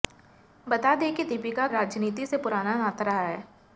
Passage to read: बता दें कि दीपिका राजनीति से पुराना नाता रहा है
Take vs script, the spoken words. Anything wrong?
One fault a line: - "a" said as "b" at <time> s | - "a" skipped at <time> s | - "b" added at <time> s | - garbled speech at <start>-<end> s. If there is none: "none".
none